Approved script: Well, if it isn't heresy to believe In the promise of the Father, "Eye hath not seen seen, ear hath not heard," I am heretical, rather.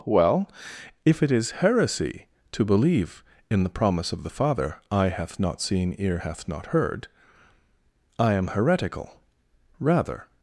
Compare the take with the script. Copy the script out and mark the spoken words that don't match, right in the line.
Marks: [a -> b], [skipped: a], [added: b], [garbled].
Well, if it [isn't -> is] heresy to believe In the promise of the Father, "Eye hath not seen [skipped: seen,] ear hath not heard," I am heretical, rather.